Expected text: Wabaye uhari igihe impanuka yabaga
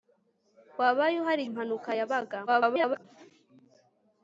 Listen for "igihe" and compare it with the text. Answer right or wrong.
wrong